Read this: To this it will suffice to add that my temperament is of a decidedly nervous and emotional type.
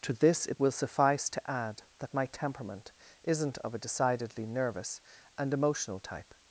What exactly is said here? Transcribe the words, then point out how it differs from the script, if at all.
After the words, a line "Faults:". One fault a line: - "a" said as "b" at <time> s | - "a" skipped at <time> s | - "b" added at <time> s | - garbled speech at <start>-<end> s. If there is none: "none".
To this it will suffice to add that my temperament isn't of a decidedly nervous and emotional type.
Faults:
- "is" said as "isn't" at 3.2 s